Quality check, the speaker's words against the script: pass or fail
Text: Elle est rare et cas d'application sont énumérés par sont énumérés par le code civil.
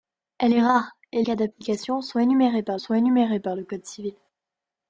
pass